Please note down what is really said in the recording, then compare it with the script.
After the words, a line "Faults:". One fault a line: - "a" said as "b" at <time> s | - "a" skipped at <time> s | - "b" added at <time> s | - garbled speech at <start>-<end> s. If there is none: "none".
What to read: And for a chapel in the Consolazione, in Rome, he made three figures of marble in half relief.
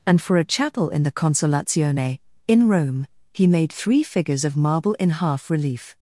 And for a chapel in the Consolazione, in Rome, he made three figures of marble in half relief.
Faults:
none